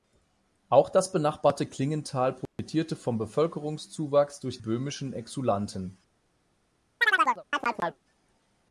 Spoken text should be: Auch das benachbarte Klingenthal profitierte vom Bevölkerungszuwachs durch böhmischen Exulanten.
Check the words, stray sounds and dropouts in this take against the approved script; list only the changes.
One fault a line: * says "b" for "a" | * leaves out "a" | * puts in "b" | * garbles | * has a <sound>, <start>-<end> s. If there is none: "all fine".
* has a dropout, 2.5-2.6 s
* has a chirp, 7.0-8.0 s